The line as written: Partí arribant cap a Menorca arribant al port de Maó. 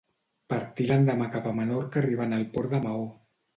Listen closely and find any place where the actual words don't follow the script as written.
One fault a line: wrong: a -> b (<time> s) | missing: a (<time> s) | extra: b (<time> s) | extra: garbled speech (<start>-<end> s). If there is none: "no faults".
wrong: arribant -> l'endemà (0.9 s)